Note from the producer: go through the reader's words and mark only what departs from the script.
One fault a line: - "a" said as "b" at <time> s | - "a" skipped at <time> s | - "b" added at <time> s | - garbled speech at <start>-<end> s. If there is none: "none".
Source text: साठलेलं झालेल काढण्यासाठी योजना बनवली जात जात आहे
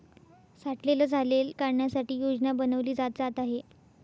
none